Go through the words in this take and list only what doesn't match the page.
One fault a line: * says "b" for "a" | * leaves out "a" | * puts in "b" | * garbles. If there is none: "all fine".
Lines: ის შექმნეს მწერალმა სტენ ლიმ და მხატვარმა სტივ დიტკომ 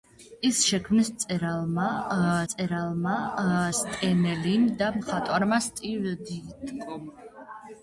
* puts in "მწერალმა"